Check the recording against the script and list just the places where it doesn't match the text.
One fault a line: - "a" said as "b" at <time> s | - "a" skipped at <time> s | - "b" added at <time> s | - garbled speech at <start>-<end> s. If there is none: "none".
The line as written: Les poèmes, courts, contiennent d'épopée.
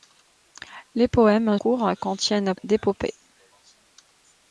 none